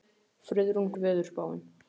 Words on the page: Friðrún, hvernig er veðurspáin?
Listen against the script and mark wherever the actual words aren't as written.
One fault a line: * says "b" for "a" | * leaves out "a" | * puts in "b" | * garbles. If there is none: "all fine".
* leaves out "hvernig"